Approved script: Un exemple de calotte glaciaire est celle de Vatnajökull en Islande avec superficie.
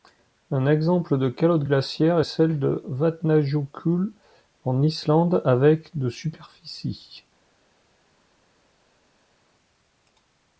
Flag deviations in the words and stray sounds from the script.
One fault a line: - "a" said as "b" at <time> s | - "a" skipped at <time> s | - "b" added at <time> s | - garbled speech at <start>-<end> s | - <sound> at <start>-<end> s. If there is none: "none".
- "de" added at 6.0 s